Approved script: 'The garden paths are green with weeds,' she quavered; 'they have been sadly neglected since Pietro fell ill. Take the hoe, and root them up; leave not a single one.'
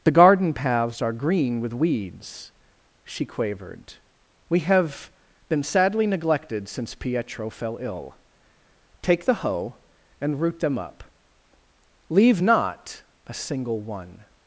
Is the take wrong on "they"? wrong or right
wrong